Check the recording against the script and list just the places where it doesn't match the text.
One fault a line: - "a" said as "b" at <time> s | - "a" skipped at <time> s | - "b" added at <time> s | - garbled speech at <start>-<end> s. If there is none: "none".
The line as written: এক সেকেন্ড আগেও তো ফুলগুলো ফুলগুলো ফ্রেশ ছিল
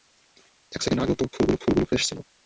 none